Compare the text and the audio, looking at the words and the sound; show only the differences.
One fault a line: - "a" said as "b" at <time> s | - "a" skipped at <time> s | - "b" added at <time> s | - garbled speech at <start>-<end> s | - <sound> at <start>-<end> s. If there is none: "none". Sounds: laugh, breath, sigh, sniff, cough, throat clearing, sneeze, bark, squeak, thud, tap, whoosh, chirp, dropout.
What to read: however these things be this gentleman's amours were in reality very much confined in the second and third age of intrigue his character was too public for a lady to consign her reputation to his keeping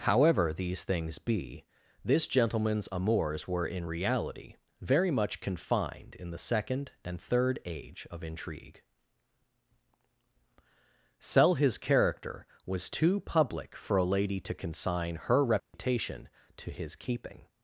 - "sell" added at 11.2 s
- dropout at 15.6-15.7 s